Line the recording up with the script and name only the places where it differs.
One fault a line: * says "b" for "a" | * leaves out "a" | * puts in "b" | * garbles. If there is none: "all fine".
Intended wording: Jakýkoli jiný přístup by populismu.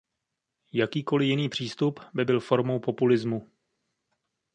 * puts in "byl formou"